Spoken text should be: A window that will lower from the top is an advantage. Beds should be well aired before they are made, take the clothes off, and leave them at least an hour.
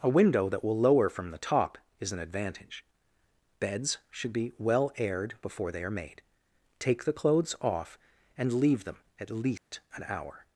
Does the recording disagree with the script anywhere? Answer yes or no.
no